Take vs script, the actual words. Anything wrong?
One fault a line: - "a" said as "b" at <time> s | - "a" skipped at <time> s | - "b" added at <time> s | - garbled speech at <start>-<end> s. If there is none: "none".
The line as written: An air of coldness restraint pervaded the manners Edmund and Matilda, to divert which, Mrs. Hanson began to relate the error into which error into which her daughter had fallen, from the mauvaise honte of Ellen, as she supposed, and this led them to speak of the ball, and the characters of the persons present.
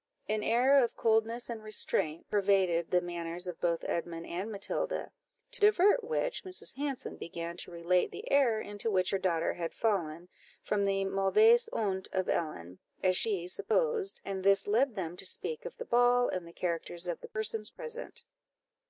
- "and" added at 1.5 s
- "of both" added at 3.5 s
- "error into which" skipped at 9.1 s